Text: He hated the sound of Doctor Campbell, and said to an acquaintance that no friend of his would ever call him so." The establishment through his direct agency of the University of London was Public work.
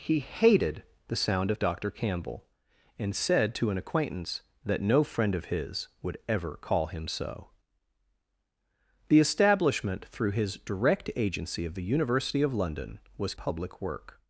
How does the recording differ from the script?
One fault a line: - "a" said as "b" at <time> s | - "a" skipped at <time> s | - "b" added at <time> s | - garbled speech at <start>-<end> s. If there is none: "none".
none